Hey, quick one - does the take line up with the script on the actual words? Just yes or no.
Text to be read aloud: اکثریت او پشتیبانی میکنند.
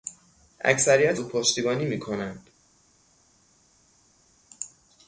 yes